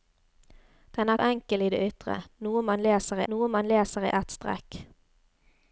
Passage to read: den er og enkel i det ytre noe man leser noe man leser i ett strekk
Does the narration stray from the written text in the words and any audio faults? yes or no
no